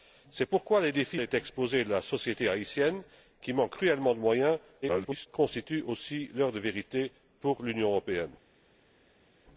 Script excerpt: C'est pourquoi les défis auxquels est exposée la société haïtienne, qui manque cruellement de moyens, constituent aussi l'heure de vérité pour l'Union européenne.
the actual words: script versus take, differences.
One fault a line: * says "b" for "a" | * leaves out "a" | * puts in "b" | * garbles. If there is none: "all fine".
* leaves out "auxquels"
* garbles